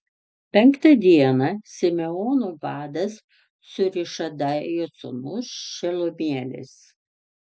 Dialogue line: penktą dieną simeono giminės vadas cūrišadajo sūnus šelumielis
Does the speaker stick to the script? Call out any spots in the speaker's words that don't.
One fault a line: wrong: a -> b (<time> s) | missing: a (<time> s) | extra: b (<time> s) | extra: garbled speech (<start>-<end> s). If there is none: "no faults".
missing: giminės (2.5 s)